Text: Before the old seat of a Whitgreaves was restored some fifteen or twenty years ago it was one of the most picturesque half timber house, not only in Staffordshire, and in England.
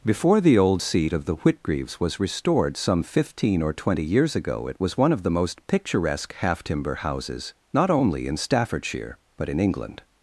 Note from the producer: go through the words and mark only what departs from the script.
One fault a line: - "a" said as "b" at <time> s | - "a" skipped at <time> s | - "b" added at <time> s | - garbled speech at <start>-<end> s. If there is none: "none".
- "a" said as "the" at 1.2 s
- "house" said as "houses" at 6.9 s
- "and" said as "but" at 9.3 s